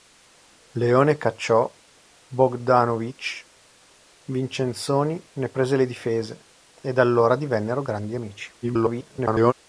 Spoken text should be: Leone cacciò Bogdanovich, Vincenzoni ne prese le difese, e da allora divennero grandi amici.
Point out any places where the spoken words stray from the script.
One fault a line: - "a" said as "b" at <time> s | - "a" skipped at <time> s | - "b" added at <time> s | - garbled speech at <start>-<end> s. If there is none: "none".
- garbled speech at 8.6-9.5 s